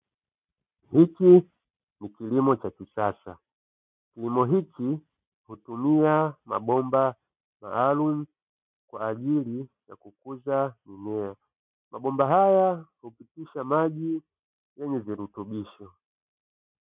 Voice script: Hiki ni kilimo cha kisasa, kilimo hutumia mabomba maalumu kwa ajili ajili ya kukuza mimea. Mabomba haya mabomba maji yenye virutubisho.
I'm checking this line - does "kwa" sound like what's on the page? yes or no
yes